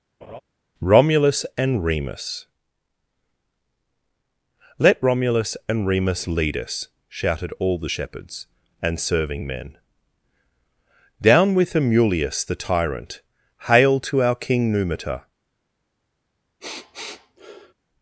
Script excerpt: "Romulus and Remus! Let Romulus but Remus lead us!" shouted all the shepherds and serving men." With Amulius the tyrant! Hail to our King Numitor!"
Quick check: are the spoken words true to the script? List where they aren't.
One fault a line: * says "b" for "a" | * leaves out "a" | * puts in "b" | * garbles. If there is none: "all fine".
* says "and" for "but"
* puts in "Down"